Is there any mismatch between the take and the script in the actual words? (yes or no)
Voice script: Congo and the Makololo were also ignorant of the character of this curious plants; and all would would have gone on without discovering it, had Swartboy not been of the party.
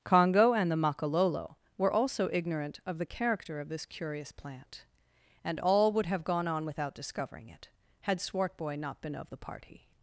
yes